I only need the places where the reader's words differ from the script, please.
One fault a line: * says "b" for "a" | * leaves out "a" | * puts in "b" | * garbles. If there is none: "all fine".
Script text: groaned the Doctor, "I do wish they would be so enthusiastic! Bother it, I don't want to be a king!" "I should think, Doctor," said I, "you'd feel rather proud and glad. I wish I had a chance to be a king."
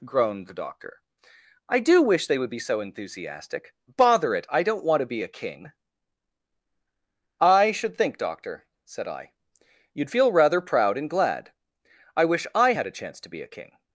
all fine